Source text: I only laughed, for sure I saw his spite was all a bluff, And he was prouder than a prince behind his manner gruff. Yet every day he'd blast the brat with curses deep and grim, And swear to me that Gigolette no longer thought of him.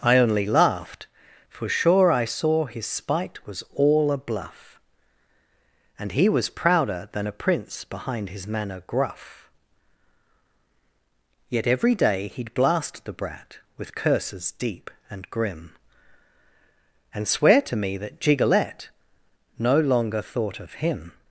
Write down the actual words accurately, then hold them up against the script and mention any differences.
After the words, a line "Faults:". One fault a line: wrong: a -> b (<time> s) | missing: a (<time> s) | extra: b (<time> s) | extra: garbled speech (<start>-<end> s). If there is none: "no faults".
I only laughed, for sure I saw his spite was all a bluff, And he was prouder than a prince behind his manner gruff. Yet every day he'd blast the brat with curses deep and grim, And swear to me that Gigolette no longer thought of him.
Faults:
no faults